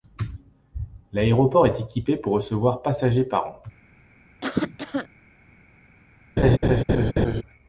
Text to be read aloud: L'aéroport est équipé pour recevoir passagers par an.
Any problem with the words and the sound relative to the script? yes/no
yes